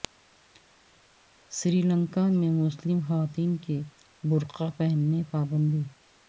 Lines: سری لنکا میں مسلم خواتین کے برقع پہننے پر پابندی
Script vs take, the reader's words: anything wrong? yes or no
yes